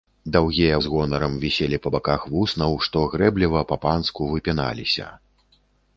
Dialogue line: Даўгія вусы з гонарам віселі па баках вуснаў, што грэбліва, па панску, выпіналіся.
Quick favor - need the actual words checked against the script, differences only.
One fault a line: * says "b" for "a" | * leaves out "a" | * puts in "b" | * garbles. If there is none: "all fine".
* leaves out "вусы"